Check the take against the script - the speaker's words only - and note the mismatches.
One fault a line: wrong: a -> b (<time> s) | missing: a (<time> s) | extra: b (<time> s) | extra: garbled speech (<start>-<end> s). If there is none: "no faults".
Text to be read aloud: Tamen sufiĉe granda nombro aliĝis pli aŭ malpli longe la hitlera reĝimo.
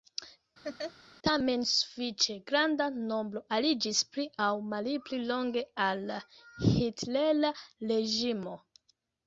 extra: al (5.9 s)